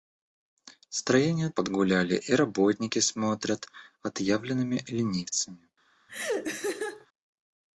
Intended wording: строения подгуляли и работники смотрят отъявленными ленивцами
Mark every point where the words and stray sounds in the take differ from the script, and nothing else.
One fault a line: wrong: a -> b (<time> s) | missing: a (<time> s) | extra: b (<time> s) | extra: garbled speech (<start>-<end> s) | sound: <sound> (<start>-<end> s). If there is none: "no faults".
sound: laugh (6.1-7.1 s)